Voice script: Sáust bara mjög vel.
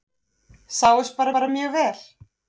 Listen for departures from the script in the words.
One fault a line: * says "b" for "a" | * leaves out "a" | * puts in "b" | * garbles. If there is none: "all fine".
* puts in "bara"